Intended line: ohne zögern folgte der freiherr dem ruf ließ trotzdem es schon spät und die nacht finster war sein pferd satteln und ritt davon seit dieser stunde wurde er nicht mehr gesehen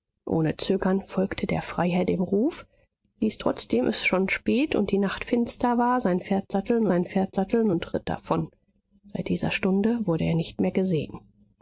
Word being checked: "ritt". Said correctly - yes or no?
yes